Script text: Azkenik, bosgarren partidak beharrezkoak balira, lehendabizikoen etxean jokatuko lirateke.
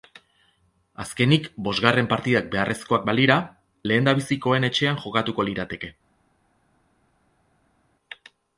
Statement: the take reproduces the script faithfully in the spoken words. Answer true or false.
true